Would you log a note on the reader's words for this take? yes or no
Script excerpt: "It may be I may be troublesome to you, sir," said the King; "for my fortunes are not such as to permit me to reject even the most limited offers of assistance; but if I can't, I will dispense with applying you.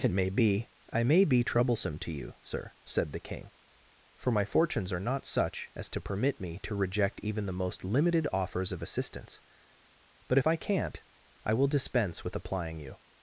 no